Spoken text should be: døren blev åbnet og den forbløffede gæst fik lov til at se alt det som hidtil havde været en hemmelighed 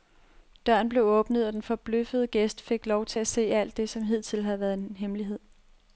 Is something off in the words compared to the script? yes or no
no